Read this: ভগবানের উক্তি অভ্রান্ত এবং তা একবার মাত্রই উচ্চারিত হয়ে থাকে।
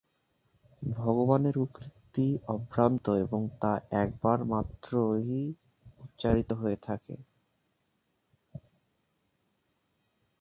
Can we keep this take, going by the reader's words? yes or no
yes